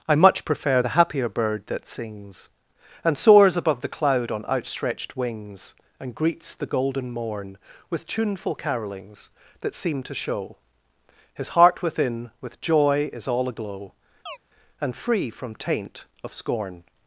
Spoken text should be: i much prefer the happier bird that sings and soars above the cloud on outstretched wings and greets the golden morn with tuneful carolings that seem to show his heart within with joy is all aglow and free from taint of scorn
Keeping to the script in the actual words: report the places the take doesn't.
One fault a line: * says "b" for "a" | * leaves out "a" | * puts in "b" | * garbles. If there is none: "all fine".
all fine